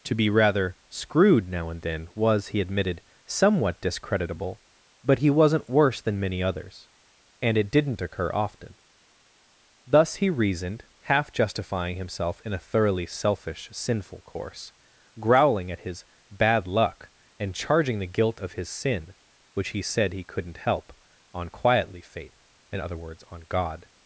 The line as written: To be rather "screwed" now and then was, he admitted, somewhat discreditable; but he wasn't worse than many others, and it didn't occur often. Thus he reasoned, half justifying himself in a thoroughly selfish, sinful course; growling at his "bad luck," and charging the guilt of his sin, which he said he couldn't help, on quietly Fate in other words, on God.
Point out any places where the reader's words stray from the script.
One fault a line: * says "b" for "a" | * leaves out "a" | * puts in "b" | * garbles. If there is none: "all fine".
all fine